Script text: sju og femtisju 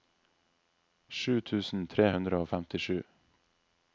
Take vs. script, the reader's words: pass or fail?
fail